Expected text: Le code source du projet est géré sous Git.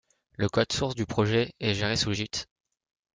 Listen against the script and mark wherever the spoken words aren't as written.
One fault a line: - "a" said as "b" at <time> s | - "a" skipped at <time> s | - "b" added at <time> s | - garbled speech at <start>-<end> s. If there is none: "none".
none